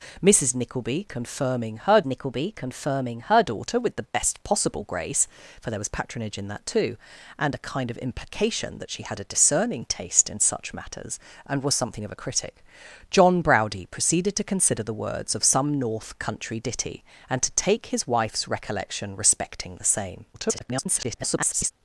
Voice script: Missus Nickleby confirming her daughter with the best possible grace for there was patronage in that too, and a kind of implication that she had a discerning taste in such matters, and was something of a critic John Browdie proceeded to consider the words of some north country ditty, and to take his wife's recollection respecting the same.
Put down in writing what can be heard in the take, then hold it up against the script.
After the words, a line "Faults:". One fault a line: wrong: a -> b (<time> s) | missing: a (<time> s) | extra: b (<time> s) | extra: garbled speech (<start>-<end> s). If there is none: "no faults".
Missus Nickleby confirming her Nickleby confirming her daughter with the best possible grace for there was patronage in that too, and a kind of implication that she had a discerning taste in such matters, and was something of a critic John Browdie proceeded to consider the words of some north country ditty, and to take his wife's recollection respecting the same. [garbled]
Faults:
extra: Nickleby confirming her (2.1 s)
extra: garbled speech (20.3-21.7 s)